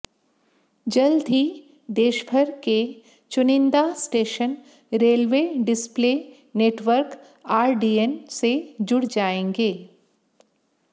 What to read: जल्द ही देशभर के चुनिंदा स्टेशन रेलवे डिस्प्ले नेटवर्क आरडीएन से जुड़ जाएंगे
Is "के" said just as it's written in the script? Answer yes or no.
yes